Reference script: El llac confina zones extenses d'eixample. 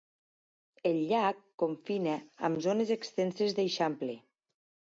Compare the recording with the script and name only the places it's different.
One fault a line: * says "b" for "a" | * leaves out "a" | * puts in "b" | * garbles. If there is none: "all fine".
* puts in "amb"